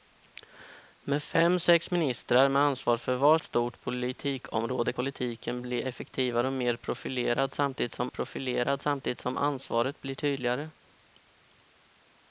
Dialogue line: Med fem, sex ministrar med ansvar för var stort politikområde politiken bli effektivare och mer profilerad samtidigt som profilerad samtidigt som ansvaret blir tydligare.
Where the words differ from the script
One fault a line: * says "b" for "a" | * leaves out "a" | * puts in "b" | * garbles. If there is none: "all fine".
all fine